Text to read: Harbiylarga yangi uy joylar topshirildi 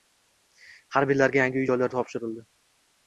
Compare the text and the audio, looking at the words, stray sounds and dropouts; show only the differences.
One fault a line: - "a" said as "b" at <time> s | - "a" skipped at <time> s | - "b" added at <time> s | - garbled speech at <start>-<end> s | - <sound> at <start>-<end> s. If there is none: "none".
none